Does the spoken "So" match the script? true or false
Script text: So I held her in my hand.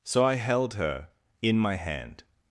true